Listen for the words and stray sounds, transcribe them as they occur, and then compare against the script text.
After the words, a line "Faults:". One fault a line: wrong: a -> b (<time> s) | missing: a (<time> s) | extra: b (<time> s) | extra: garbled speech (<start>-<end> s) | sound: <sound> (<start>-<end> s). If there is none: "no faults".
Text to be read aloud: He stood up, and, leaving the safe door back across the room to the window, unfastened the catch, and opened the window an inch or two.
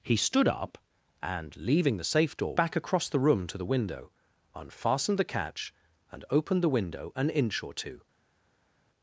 He stood up, and, leaving the safe door back across the room to the window, unfastened the catch, and opened the window an inch or two.
Faults:
no faults